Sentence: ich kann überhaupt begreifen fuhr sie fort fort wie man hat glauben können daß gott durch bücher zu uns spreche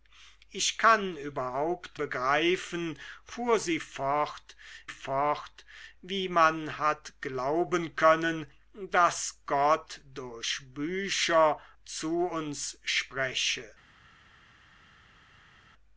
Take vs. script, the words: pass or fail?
pass